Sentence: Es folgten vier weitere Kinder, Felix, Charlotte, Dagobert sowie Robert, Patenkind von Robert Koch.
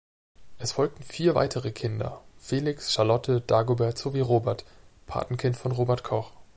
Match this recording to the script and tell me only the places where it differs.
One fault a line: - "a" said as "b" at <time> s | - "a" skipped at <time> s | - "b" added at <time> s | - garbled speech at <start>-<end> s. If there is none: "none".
none